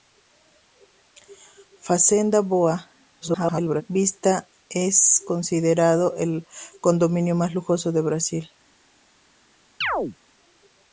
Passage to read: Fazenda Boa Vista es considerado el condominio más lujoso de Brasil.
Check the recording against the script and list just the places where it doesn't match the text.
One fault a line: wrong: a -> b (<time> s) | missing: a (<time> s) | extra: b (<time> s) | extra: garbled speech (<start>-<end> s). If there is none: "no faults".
extra: garbled speech (3.2-3.8 s)